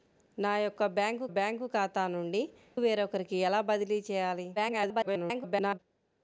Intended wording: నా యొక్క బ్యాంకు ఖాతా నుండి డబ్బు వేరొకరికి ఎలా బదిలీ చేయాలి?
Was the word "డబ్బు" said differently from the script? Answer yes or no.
yes